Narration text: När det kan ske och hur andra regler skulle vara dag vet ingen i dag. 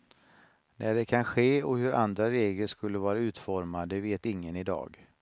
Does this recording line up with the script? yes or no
no